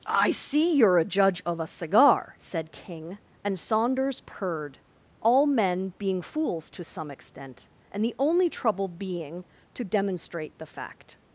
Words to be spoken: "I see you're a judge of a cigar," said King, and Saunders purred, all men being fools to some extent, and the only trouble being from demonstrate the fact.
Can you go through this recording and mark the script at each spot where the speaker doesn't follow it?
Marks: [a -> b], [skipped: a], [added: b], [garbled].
"I see you're a judge of a cigar," said King, and Saunders purred, all men being fools to some extent, and the only trouble being [from -> to] demonstrate the fact.